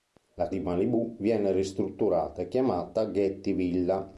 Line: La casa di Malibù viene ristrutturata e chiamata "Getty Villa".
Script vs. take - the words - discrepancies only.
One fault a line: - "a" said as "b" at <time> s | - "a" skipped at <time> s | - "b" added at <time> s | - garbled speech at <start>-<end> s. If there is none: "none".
- "casa" skipped at 0.5 s